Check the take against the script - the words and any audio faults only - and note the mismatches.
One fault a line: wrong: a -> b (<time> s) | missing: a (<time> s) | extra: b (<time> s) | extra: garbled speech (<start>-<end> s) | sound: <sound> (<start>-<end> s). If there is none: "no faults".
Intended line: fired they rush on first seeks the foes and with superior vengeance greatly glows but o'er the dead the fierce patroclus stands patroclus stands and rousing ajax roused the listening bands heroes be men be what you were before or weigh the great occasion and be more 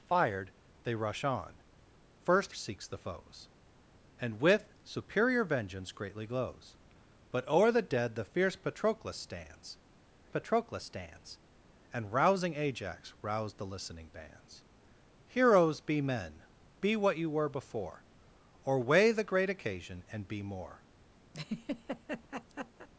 sound: laugh (21.3-22.9 s)